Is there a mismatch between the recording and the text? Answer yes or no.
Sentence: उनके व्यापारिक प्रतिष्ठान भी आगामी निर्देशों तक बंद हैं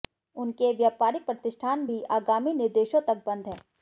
no